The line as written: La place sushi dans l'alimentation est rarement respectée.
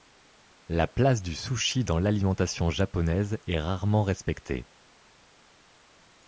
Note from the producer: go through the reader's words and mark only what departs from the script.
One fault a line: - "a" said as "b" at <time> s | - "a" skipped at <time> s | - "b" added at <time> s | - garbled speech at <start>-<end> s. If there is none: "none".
- "du" added at 1.2 s
- "japonaise" added at 2.7 s